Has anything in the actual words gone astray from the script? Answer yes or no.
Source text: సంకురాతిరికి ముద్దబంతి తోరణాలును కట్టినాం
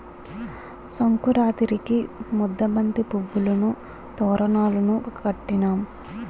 yes